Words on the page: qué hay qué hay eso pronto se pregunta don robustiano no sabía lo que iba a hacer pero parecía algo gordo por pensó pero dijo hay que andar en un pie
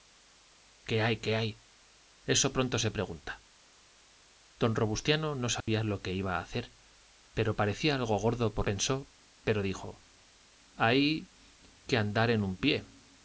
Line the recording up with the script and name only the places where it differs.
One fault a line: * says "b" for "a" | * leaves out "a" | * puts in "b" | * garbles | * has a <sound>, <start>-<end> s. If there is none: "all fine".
* has a dropout, 5.6-5.7 s